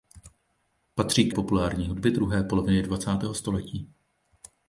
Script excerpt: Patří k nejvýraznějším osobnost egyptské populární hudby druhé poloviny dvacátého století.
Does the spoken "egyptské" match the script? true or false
false